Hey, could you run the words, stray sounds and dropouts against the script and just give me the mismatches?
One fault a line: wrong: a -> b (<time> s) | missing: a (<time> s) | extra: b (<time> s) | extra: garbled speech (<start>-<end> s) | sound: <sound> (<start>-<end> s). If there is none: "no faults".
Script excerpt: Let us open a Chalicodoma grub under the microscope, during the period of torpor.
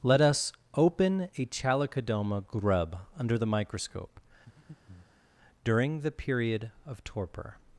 sound: breath (4.5-5.2 s)